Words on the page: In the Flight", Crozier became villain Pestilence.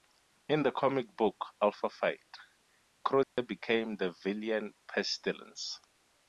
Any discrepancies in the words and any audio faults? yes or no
yes